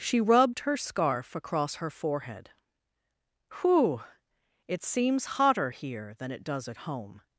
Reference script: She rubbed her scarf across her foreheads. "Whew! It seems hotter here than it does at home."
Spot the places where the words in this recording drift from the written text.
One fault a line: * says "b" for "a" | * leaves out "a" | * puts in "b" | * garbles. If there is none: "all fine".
* says "forehead" for "foreheads"